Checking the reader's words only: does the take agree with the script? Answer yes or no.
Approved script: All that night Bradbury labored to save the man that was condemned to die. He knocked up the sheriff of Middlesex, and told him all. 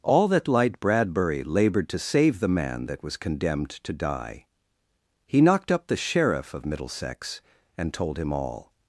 no